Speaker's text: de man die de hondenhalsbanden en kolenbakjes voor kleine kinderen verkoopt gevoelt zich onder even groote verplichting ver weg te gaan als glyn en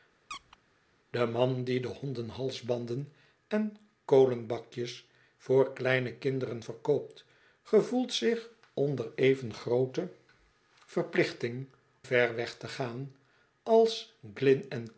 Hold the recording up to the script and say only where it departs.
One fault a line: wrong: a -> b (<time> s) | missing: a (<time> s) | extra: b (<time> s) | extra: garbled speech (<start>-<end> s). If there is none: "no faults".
no faults